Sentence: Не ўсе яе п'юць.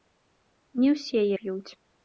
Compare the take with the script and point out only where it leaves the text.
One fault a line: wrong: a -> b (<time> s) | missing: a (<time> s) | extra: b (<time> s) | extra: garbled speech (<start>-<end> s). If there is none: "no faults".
missing: яе (1.2 s)